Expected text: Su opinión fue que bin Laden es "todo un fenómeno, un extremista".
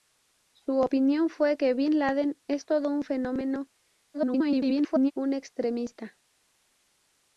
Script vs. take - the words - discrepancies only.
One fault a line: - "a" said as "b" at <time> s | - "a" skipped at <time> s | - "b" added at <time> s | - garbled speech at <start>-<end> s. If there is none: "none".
- garbled speech at 4.1-5.1 s